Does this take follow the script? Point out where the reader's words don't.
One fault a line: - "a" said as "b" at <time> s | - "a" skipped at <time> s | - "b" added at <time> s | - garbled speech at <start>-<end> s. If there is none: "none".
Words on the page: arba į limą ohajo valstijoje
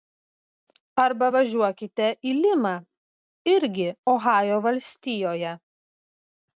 - "važiuokite" added at 1.3 s
- "irgi" added at 3.5 s